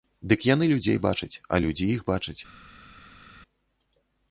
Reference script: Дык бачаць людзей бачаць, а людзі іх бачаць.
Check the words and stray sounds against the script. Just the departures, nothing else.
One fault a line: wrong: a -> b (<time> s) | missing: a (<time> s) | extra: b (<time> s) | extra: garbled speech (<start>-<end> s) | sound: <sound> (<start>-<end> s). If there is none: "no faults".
wrong: бачаць -> яны (0.5 s)